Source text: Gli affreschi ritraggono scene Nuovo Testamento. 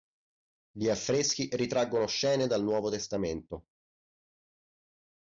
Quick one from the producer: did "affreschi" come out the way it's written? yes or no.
yes